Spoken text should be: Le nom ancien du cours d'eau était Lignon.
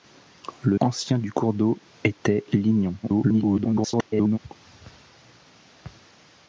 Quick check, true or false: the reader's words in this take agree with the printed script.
false